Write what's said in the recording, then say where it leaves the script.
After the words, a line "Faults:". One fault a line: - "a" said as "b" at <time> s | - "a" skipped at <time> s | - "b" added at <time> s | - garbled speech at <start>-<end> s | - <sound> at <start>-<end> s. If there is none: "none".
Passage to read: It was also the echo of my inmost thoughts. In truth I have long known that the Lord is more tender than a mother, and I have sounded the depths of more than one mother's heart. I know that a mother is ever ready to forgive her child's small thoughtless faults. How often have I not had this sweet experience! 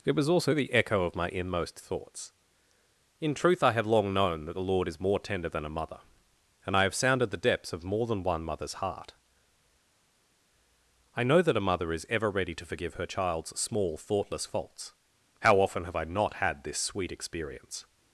It was also the echo of my inmost thoughts. In truth I have long known that the Lord is more tender than a mother, and I have sounded the depths of more than one mother's heart. I know that a mother is ever ready to forgive her child's small thoughtless faults. How often have I not had this sweet experience!
Faults:
none